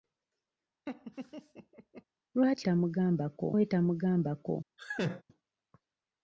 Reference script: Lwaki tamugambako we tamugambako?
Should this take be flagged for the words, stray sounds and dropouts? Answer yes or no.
yes